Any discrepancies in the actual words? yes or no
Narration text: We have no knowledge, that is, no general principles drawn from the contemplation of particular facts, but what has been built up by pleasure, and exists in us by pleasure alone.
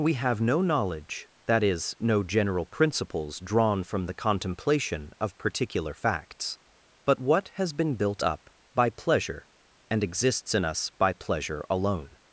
no